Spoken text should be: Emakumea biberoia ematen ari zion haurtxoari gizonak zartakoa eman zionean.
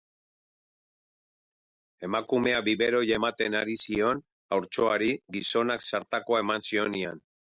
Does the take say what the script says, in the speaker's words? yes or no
yes